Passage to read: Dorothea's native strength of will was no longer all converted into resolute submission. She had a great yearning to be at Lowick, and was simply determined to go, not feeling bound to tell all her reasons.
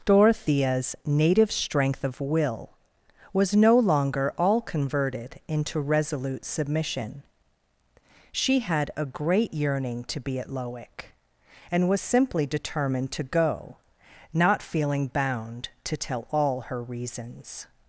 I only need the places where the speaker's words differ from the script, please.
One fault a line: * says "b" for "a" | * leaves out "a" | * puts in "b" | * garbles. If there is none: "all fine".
all fine